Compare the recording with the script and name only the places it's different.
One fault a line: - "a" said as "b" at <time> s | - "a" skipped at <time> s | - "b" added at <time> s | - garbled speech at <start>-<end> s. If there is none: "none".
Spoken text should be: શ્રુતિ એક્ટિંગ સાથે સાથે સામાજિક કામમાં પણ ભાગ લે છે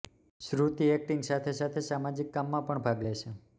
none